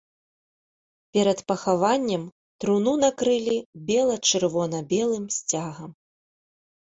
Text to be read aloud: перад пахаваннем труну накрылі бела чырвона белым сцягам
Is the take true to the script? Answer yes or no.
yes